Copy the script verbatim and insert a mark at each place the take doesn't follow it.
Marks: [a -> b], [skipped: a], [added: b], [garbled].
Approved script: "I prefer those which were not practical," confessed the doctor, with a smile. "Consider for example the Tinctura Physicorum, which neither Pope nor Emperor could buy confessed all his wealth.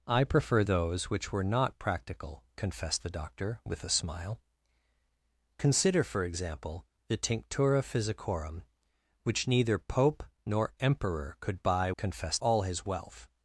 "I prefer those which were not practical," confessed the doctor, with a smile. "Consider for example the Tinctura Physicorum, which neither Pope nor Emperor could buy confessed all his wealth.